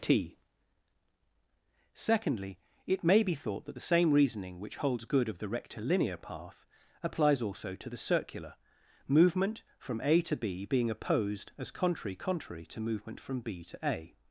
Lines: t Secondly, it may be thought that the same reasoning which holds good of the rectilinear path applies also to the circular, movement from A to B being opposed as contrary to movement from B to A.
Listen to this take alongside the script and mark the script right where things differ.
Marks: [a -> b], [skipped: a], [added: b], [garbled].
t Secondly, it may be thought that the same reasoning which holds good of the rectilinear path applies also to the circular, movement from A to B being opposed as contrary [added: contrary] to movement from B to A.